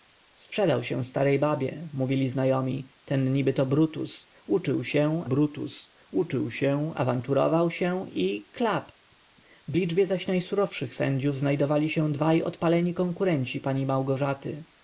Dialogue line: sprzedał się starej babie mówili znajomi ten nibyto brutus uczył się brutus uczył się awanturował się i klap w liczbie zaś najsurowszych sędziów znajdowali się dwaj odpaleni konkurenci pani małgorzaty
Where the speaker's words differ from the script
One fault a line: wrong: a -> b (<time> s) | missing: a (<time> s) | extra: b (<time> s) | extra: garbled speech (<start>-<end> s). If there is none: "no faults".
no faults